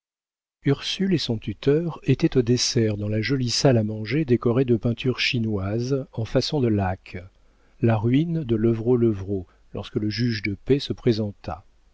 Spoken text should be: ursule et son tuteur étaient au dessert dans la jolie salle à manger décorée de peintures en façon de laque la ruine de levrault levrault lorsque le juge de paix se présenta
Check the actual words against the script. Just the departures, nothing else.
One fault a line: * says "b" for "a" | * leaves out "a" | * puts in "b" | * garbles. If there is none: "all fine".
* puts in "chinoises"